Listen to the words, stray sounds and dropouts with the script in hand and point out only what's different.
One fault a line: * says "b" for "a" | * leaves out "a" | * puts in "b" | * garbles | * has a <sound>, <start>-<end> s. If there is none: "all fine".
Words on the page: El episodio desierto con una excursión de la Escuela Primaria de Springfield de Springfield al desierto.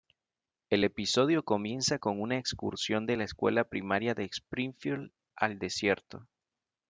* says "comienza" for "desierto"
* leaves out "de Springfield"